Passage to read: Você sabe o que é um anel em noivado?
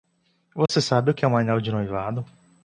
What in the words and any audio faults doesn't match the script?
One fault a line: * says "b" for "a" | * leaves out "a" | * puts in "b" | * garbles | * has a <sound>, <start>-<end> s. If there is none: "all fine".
* has a dropout, 0.7-0.7 s
* says "de" for "em"